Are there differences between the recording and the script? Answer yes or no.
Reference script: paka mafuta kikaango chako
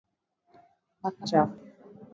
yes